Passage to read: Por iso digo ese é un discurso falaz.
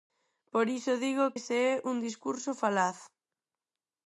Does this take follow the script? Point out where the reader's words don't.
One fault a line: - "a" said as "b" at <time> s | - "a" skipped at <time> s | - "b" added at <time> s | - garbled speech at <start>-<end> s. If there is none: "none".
none